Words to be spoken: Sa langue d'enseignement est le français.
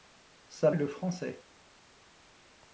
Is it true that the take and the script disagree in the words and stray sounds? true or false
true